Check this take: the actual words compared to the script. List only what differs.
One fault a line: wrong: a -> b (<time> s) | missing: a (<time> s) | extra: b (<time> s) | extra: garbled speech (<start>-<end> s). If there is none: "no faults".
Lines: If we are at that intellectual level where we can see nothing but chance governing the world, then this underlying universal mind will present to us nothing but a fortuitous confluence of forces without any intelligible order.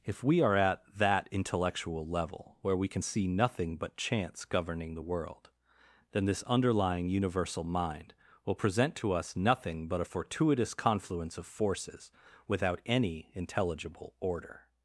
no faults